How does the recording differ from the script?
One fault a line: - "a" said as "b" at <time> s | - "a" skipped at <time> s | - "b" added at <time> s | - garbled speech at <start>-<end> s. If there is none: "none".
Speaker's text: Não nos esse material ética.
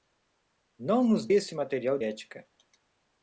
none